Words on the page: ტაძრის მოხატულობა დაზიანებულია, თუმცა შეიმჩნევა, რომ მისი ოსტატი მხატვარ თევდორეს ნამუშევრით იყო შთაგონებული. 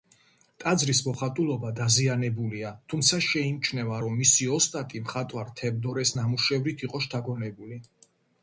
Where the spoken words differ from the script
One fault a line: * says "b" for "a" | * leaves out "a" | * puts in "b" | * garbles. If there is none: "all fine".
all fine